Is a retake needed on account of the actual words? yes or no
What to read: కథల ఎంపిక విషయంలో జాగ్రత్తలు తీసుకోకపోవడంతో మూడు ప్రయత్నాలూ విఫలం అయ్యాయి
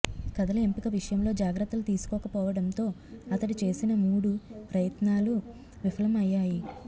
yes